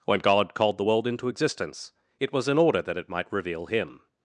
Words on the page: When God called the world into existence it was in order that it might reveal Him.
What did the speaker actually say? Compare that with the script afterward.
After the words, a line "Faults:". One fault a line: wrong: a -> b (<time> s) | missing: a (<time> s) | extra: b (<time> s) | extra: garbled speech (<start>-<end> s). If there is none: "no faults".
When God called the world into existence it was in order that it might reveal Him.
Faults:
no faults